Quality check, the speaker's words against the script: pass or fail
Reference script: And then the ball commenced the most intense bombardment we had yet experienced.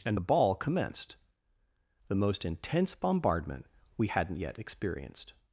fail